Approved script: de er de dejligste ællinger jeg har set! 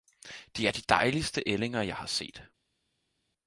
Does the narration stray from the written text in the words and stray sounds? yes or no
no